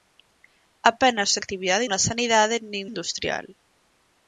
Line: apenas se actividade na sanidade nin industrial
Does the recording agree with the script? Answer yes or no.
yes